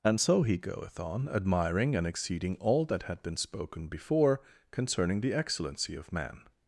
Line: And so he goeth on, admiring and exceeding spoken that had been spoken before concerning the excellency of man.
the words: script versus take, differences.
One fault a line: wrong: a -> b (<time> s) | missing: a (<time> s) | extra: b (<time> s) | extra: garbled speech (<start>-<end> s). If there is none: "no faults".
wrong: spoken -> all (2.6 s)